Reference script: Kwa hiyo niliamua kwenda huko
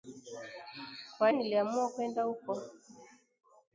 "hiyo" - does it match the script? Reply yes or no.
no